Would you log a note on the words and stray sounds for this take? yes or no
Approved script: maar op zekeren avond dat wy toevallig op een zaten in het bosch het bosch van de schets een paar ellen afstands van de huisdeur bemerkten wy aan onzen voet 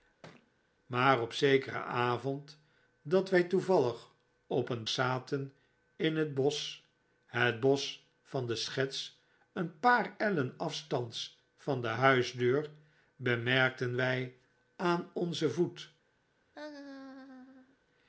yes